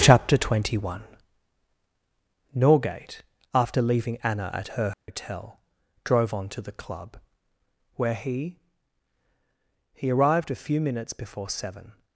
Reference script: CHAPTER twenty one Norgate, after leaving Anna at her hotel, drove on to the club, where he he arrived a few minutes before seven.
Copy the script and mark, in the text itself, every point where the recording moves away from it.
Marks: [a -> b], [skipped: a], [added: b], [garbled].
CHAPTER twenty one Norgate, after leaving Anna at her hotel, drove on to the club, where he he arrived a few minutes before seven.